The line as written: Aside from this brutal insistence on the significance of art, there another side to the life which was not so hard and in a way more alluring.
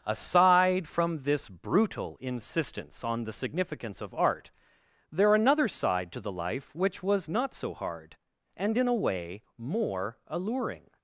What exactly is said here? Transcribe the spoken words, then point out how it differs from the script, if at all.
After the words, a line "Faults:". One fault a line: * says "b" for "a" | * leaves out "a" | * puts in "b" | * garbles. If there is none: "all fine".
Aside from this brutal insistence on the significance of art, there another side to the life which was not so hard and in a way more alluring.
Faults:
all fine